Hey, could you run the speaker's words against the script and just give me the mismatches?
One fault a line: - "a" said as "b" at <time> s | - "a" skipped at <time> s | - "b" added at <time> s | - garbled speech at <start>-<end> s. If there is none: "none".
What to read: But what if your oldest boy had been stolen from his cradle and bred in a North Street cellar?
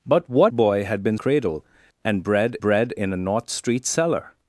- "if your oldest" skipped at 0.5 s
- "stolen from his" skipped at 1.2 s
- "bred" added at 2.6 s